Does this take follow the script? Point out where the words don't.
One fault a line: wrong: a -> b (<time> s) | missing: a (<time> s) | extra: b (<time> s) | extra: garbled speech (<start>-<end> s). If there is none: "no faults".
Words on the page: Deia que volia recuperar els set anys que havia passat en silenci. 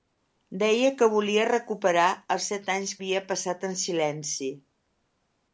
missing: que (3.0 s)